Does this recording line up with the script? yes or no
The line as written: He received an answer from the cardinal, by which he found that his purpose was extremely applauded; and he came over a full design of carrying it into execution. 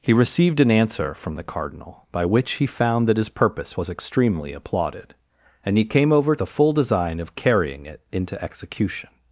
yes